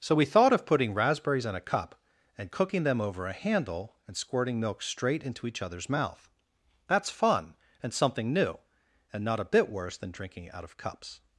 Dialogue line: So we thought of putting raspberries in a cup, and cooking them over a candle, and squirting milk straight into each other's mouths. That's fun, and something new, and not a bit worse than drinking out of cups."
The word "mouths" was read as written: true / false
false